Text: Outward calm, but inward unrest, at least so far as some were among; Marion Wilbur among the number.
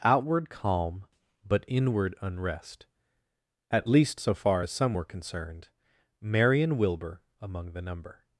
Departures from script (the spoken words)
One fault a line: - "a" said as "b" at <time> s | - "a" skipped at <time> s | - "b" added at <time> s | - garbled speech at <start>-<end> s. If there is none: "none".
- "among" said as "concerned" at 5.1 s